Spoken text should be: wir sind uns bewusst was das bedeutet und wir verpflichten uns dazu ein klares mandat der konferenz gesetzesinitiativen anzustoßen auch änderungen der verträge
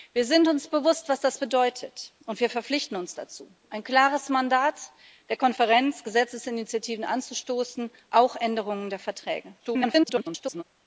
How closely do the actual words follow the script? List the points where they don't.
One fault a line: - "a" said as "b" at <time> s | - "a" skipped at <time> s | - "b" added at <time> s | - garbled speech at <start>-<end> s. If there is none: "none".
- garbled speech at 9.6-10.6 s